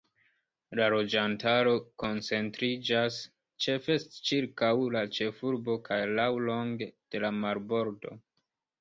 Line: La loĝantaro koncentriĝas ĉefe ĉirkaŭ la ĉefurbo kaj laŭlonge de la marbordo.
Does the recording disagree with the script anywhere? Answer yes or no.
no